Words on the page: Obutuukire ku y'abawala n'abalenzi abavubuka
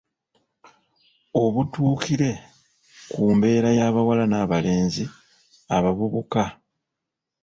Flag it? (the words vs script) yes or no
yes